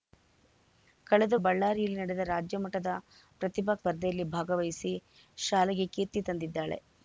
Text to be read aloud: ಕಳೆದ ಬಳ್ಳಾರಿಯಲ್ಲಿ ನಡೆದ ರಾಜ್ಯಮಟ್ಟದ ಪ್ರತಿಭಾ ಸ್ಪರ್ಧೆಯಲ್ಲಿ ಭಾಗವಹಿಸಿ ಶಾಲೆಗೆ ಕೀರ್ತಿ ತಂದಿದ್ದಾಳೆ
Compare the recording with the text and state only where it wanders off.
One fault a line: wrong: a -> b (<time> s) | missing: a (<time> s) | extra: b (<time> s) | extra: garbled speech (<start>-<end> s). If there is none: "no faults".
no faults